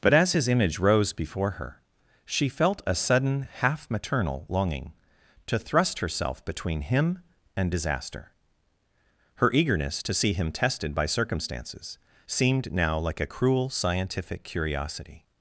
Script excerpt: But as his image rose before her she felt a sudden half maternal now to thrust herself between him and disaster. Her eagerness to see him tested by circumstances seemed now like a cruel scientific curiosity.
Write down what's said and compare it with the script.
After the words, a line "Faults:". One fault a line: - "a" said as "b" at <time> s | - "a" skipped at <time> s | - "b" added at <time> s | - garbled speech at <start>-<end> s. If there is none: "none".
But as his image rose before her she felt a sudden half maternal longing to thrust herself between him and disaster. Her eagerness to see him tested by circumstances seemed now like a cruel scientific curiosity.
Faults:
- "now" said as "longing" at 4.5 s